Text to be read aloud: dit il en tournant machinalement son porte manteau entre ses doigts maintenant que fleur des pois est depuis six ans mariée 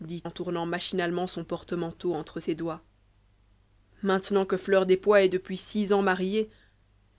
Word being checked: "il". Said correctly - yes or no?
no